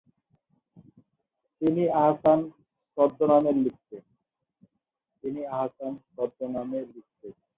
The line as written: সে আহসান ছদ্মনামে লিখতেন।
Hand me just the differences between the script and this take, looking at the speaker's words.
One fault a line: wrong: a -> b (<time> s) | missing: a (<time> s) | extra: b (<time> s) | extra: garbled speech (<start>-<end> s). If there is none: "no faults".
wrong: সে -> তিনি (1.6 s)